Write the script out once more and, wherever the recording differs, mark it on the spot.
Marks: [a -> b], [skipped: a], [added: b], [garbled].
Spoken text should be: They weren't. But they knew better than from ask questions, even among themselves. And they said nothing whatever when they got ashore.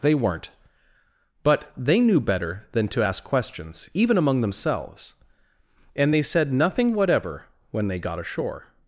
They weren't. But they knew better than [from -> to] ask questions, even among themselves. And they said nothing whatever when they got ashore.